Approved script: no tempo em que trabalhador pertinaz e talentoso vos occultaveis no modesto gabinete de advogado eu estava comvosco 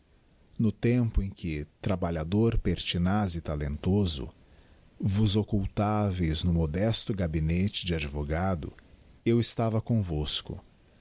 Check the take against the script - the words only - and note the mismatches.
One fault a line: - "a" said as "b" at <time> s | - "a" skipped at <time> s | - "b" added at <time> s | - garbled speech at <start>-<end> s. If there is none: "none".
none